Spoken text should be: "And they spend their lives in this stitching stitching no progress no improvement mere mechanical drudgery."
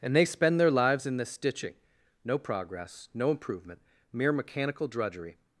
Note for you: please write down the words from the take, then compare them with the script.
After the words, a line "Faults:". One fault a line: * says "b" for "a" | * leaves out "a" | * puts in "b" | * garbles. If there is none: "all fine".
"And they spend their lives in this stitching no progress no improvement mere mechanical drudgery."
Faults:
* leaves out "stitching"